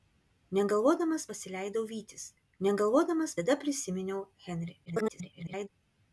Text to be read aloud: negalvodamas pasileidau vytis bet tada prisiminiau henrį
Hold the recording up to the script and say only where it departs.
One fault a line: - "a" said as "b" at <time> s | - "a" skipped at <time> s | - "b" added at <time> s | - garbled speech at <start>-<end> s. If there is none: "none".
- "bet" said as "negalvodamas" at 2.7 s
- garbled speech at 4.9-5.7 s